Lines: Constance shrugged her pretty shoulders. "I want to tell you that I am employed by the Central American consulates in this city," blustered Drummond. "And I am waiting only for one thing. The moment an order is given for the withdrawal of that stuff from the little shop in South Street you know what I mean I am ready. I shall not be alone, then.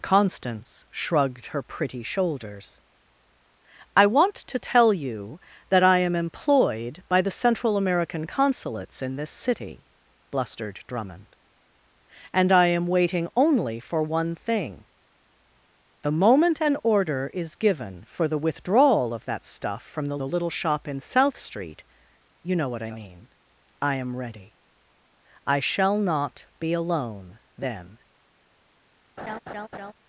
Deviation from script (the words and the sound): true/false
true